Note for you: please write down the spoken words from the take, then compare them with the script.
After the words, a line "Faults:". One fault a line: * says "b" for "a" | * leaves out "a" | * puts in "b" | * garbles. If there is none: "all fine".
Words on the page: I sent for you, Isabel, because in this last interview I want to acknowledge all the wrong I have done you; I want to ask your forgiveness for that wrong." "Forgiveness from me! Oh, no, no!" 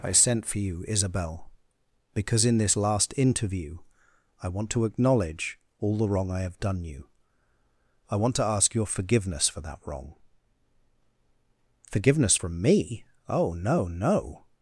I sent for you, Isabel, because in this last interview I want to acknowledge all the wrong I have done you; I want to ask your forgiveness for that wrong." "Forgiveness from me! Oh, no, no!"
Faults:
all fine